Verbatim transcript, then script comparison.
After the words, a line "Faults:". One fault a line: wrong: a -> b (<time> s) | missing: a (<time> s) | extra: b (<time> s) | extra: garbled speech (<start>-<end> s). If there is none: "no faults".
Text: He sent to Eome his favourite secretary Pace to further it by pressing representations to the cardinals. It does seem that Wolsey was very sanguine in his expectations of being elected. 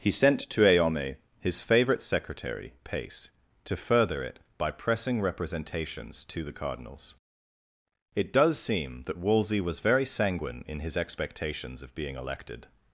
He sent to Eome his favourite secretary Pace to further it by pressing representations to the cardinals. It does seem that Wolsey was very sanguine in his expectations of being elected.
Faults:
no faults